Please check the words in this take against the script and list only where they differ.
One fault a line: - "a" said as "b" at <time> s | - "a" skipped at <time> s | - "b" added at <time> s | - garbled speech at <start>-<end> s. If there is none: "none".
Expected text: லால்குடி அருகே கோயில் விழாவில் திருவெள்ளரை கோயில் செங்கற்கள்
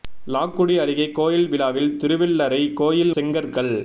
none